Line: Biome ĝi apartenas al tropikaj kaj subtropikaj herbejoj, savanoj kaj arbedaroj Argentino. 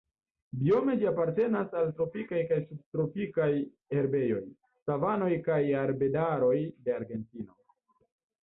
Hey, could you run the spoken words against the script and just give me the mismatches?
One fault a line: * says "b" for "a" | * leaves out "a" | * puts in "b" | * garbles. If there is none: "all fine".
* puts in "de"